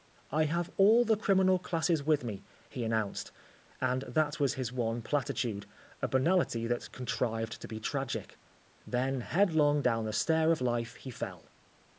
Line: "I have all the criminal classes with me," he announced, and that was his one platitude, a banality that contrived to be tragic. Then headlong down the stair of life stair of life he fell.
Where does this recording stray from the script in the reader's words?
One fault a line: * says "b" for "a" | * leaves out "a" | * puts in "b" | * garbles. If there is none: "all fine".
* leaves out "stair of life"